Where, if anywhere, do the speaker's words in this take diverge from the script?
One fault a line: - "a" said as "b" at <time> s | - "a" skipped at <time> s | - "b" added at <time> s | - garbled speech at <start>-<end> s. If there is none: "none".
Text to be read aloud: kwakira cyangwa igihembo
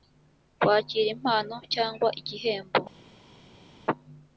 - "impano" added at 1.1 s